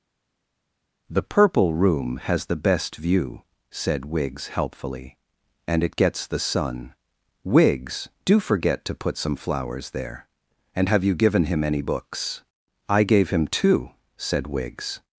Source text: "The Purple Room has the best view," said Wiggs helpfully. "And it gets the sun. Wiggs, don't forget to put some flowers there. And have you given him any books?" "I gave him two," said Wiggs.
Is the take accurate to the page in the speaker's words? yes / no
no